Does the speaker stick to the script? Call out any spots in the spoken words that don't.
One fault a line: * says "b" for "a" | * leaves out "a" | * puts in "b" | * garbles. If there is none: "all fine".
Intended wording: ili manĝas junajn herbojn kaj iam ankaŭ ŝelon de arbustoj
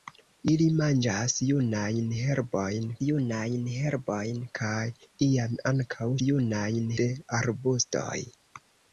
* puts in "junajn herbojn"
* says "junajn" for "ŝelon"